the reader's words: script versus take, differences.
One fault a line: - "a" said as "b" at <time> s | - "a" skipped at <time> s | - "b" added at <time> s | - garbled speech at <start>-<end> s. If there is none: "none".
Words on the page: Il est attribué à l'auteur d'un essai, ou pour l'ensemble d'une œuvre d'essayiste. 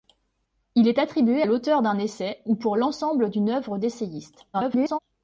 - "à" skipped at 1.4 s
- garbled speech at 4.5-5.0 s